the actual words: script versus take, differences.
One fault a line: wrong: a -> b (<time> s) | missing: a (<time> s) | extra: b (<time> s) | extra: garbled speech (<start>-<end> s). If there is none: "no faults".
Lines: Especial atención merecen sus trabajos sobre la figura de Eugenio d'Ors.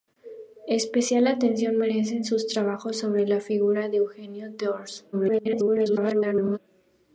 extra: garbled speech (5.1-6.6 s)